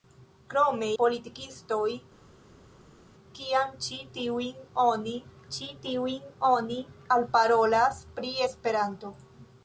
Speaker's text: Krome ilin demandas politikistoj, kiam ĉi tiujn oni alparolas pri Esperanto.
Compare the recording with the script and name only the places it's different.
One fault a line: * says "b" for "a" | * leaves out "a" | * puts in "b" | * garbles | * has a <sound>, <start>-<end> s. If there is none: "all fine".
* says "politikistoj kiam ĉi tiujn oni" for "ilin demandas politikistoj kiam"